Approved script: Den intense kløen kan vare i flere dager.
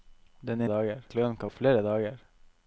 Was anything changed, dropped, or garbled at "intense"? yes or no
yes